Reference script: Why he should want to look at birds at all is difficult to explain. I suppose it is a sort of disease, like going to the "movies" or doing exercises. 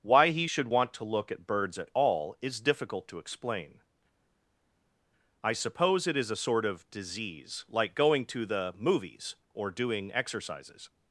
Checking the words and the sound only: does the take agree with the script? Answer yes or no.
yes